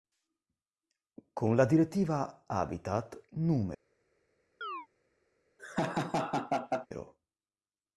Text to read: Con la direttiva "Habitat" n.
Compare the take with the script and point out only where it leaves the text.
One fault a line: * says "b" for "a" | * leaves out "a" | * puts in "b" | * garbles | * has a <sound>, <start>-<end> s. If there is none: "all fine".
* has a chirp, 4.6-4.9 s
* has a laugh, 5.6-6.9 s